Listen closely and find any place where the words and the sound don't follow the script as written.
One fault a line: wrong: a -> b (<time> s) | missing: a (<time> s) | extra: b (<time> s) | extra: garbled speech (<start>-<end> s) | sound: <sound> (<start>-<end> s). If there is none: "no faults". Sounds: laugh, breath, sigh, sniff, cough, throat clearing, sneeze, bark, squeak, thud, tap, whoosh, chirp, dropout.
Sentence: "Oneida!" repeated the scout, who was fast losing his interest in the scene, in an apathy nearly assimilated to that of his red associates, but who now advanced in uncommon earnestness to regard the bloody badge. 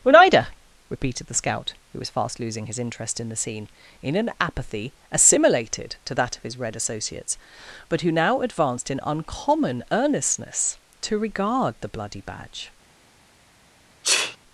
missing: nearly (5.0 s)
sound: sneeze (14.0-14.4 s)